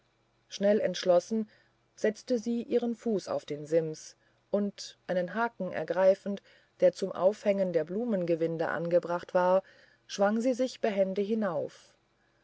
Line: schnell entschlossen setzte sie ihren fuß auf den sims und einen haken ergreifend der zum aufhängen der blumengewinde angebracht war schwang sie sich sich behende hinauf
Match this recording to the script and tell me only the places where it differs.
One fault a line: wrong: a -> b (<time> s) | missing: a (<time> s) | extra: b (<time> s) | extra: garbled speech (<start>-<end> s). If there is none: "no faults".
missing: sich (10.8 s)